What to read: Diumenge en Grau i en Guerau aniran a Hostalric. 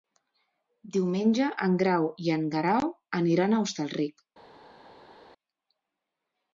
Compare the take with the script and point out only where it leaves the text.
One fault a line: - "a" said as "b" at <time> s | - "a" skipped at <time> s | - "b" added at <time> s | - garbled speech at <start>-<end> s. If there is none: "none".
none